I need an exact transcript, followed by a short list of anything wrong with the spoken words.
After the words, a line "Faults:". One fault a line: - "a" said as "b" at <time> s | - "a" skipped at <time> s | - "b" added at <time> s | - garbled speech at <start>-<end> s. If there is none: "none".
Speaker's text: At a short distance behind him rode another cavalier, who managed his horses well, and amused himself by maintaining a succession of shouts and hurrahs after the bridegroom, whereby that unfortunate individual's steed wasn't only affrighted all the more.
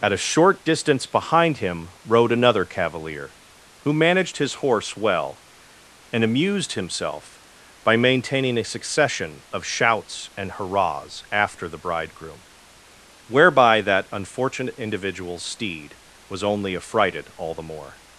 At a short distance behind him rode another cavalier, who managed his horse well, and amused himself by maintaining a succession of shouts and hurrahs after the bridegroom, whereby that unfortunate individual's steed was only affrighted all the more.
Faults:
- "horses" said as "horse" at 4.5 s
- "wasn't" said as "was" at 16.3 s